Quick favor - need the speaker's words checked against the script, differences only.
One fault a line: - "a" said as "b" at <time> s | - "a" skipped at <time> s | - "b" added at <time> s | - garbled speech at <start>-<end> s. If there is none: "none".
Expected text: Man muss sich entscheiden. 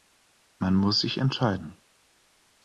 none